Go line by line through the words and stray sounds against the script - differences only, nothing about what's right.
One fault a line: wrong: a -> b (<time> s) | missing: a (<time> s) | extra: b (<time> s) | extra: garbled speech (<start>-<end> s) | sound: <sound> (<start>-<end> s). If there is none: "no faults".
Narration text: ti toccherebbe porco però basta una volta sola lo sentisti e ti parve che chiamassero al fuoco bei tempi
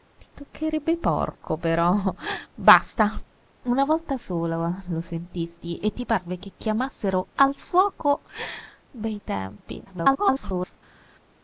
extra: garbled speech (9.9-10.8 s)